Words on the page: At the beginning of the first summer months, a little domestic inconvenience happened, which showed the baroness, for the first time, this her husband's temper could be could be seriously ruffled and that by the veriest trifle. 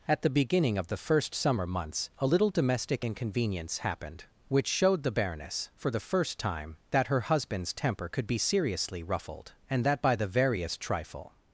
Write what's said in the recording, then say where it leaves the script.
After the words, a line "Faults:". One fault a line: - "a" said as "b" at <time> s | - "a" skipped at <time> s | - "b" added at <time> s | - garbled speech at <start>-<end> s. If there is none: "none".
At the beginning of the first summer months, a little domestic inconvenience happened, which showed the baroness, for the first time, that her husband's temper could be seriously ruffled and that by the veriest trifle.
Faults:
- "this" said as "that" at 6.9 s
- "could be" skipped at 8.4 s